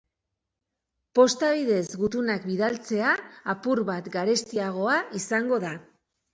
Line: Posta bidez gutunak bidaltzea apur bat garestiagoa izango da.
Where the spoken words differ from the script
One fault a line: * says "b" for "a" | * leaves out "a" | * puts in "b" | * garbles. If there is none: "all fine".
all fine